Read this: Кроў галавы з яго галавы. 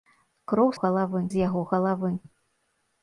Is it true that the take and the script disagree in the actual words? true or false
false